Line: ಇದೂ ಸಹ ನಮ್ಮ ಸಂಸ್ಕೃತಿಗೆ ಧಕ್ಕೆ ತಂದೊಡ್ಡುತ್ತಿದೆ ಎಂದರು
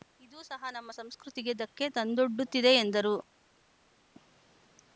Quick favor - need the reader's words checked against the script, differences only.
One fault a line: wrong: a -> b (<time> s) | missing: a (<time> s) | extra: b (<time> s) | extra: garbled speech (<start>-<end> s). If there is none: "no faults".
no faults